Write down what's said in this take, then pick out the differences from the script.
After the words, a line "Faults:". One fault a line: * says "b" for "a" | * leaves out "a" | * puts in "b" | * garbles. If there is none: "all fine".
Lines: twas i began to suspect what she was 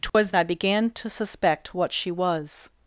twas i began to suspect what she was
Faults:
all fine